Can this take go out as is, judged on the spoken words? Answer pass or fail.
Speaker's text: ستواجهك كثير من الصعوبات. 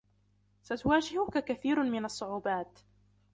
pass